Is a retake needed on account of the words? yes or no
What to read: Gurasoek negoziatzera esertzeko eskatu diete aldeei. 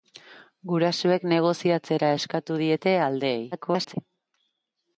yes